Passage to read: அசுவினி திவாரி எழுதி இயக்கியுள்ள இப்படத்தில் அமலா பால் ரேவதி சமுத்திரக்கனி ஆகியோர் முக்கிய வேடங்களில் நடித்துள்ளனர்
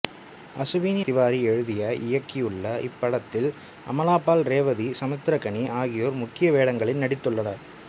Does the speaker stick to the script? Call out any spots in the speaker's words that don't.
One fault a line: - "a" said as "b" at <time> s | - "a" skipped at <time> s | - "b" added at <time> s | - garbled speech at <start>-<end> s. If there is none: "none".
none